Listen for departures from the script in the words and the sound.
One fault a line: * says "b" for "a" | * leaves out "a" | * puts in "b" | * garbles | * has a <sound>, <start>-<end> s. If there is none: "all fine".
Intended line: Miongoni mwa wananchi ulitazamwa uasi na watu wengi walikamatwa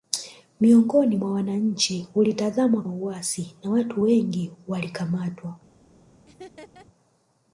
* has a laugh, 6.3-6.9 s